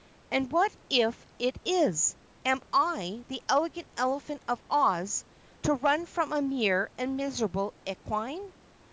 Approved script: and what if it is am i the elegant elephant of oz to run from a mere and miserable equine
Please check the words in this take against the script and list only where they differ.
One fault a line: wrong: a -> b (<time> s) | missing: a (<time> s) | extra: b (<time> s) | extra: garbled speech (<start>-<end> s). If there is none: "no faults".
no faults